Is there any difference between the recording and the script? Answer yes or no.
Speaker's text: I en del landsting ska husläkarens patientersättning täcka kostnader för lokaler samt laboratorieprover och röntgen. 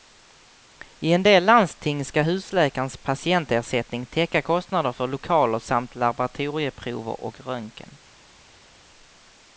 no